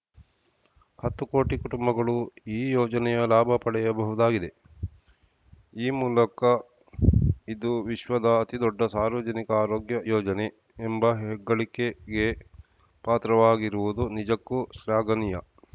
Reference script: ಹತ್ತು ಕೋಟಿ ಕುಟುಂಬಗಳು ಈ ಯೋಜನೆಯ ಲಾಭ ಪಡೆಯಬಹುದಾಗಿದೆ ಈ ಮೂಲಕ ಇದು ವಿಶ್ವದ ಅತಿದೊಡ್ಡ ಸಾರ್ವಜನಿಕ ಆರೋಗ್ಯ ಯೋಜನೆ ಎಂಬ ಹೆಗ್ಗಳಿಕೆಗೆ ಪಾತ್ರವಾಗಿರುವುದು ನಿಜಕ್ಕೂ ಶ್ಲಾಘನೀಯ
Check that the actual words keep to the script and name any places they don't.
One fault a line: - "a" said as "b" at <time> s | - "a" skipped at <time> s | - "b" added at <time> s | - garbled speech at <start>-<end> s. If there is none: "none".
none